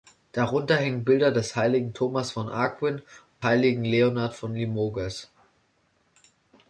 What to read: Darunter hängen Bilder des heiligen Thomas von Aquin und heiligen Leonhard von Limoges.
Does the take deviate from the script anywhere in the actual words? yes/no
no